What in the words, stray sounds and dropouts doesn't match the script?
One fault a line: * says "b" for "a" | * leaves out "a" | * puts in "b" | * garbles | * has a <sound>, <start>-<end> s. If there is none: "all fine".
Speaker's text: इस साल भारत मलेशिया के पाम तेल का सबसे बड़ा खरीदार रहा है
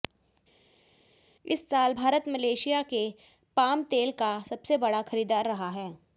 all fine